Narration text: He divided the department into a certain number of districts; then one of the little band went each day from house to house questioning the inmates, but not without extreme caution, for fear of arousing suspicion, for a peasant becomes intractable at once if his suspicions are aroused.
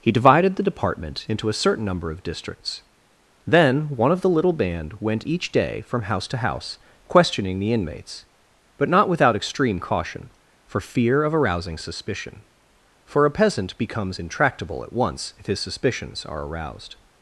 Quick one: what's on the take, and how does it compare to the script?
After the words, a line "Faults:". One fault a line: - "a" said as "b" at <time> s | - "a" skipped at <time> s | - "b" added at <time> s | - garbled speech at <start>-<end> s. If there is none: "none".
He divided the department into a certain number of districts; then one of the little band went each day from house to house questioning the inmates, but not without extreme caution, for fear of arousing suspicion, for a peasant becomes intractable at once if his suspicions are aroused.
Faults:
none